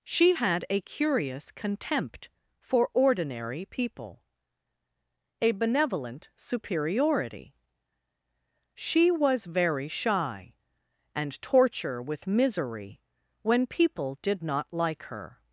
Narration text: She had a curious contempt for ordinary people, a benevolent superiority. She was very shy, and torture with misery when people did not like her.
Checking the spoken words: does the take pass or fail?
pass